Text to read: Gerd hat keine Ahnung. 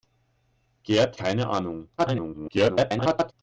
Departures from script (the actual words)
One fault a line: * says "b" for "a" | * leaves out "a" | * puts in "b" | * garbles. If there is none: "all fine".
* leaves out "hat"
* garbles